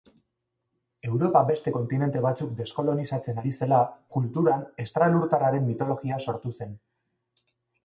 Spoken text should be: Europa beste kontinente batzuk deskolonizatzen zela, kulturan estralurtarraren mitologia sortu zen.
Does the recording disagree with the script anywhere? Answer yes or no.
yes